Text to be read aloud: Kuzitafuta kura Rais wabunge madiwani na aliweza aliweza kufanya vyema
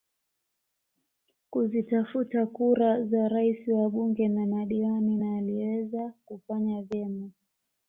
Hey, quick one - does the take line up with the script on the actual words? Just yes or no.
no